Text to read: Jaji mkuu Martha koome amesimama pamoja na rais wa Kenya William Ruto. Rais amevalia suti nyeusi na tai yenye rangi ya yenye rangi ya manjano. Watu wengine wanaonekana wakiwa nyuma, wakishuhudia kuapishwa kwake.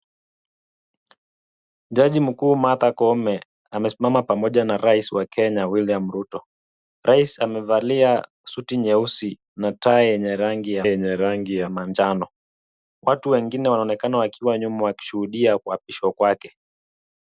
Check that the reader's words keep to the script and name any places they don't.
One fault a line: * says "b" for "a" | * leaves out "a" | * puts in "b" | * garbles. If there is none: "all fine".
all fine